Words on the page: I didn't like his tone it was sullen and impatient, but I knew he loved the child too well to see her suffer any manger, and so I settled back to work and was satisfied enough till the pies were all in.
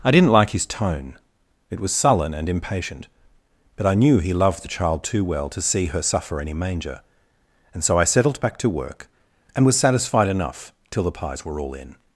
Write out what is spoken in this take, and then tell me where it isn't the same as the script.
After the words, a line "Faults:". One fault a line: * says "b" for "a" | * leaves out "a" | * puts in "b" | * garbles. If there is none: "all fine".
I didn't like his tone it was sullen and impatient, but I knew he loved the child too well to see her suffer any manger, and so I settled back to work and was satisfied enough till the pies were all in.
Faults:
all fine